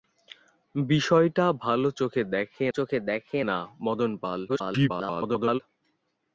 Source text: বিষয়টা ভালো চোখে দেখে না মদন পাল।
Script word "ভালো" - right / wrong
right